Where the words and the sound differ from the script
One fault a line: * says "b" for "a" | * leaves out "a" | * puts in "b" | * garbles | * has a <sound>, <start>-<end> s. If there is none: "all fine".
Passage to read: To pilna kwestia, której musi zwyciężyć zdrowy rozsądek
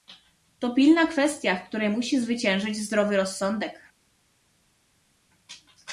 * puts in "w"